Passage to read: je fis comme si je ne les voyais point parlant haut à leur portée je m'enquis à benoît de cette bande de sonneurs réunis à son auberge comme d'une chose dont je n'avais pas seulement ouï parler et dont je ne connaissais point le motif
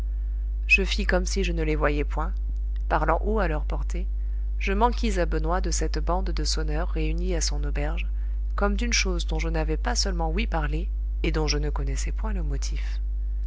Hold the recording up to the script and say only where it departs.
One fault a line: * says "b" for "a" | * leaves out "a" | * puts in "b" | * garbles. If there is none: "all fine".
all fine